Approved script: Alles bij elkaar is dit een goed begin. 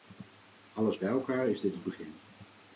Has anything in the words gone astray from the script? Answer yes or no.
yes